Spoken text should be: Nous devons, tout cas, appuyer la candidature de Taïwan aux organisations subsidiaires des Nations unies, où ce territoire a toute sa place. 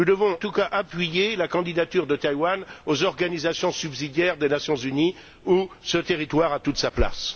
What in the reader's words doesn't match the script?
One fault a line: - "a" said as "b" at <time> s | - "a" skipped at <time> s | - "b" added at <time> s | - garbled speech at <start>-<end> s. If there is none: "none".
none